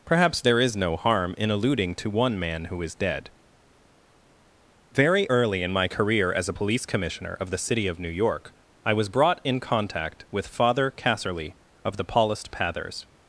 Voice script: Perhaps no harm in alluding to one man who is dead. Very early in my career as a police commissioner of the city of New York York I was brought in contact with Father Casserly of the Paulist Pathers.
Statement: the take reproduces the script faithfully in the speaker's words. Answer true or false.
false